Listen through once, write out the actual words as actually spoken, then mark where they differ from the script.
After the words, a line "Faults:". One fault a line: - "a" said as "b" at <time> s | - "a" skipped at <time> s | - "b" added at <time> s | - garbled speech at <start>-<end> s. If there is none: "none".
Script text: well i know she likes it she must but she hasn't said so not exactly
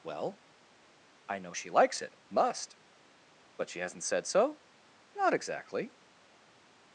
well i know she likes it must but she hasn't said so not exactly
Faults:
- "she" skipped at 2.2 s